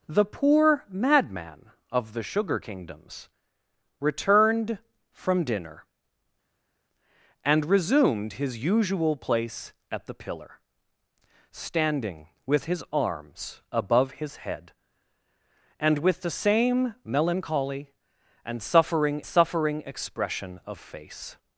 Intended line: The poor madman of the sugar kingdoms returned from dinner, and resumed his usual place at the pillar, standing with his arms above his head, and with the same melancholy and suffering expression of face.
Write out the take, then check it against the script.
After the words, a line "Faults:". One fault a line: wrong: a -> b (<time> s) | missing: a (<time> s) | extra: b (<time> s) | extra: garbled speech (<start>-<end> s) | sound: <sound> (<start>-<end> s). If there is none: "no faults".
The poor madman of the sugar kingdoms returned from dinner, and resumed his usual place at the pillar, standing with his arms above his head, and with the same melancholy and suffering suffering expression of face.
Faults:
extra: suffering (19.2 s)